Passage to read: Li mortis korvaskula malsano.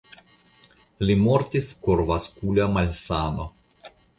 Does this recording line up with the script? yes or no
yes